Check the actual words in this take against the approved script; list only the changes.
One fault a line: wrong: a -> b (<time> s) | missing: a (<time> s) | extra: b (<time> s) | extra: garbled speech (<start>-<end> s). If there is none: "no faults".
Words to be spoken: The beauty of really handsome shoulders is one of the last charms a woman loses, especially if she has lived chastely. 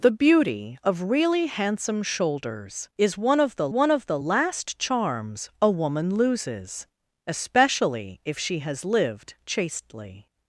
extra: one of the (3.7 s)